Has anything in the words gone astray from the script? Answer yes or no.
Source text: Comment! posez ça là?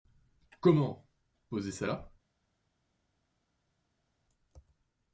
no